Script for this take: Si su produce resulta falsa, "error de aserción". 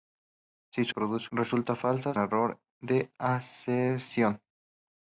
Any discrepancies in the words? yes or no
no